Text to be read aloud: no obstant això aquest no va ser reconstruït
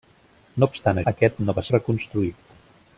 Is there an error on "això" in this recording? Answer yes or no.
yes